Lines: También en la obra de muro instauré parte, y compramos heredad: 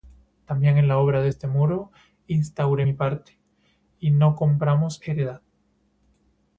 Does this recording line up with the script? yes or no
no